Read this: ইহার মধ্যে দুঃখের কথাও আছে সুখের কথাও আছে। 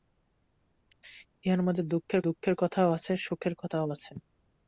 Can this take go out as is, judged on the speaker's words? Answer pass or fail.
fail